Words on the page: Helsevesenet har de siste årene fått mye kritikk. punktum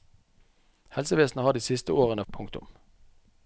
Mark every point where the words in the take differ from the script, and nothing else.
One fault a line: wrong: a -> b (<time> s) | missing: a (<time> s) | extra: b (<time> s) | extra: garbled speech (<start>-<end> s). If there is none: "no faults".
missing: fått mye kritikk (2.2 s)